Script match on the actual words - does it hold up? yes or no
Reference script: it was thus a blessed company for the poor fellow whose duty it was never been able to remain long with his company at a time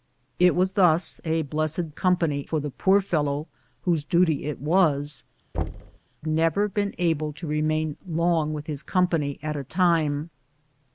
yes